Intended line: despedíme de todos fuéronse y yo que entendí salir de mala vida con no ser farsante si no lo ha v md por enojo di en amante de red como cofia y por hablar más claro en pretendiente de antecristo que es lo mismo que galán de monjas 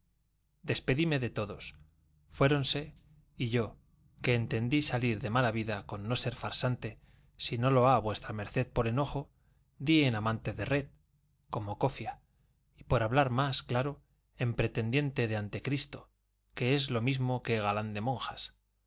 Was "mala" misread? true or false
false